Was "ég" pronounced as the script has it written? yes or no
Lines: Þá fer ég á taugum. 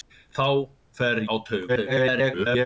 no